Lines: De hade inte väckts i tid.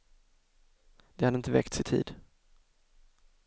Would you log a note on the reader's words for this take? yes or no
no